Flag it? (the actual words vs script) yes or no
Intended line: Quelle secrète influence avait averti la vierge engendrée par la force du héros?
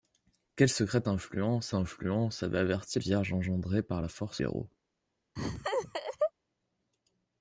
yes